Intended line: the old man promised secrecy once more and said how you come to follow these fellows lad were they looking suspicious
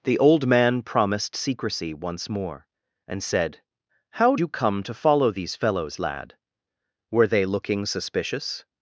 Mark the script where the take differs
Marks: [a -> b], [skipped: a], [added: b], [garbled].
the old man promised secrecy once more and said how you come to follow these fellows lad were they looking suspicious